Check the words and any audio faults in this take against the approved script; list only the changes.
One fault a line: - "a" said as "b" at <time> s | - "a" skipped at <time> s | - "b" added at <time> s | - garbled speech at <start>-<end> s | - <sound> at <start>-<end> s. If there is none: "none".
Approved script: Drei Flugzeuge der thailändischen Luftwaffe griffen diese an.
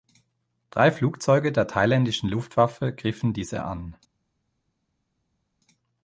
none